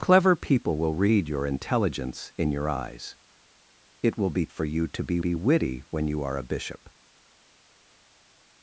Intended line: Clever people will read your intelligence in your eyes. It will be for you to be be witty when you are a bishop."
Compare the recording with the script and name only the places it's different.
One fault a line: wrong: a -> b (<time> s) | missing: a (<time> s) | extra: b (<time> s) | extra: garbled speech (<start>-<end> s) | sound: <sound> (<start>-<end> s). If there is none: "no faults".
no faults